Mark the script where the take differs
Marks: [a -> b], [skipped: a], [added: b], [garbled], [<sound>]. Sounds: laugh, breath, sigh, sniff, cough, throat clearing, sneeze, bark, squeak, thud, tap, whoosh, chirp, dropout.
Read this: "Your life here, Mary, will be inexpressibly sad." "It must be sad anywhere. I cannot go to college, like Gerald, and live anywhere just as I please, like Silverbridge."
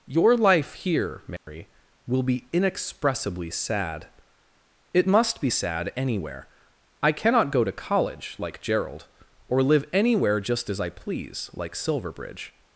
"Your life here, Mary, [dropout] will be inexpressibly sad." "It must be sad anywhere. I cannot go to college, like Gerald, [and -> or] live anywhere just as I please, like Silverbridge."